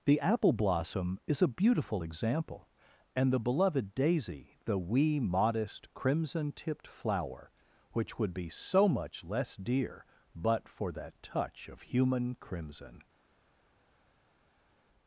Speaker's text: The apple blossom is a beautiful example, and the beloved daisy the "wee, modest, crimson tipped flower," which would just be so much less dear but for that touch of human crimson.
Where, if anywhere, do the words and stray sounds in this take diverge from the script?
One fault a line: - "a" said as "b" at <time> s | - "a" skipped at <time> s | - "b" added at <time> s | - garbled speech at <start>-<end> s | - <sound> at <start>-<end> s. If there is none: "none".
- "just" skipped at 8.3 s